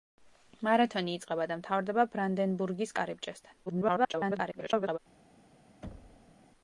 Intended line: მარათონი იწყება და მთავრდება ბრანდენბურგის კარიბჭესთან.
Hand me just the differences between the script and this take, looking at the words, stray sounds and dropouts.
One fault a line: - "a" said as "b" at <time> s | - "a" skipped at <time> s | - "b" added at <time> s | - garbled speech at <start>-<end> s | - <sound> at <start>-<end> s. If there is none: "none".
- garbled speech at 3.7-5.0 s
- thud at 5.8-6.3 s